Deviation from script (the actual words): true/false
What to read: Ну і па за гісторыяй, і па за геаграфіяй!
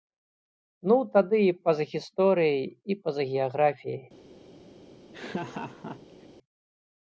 true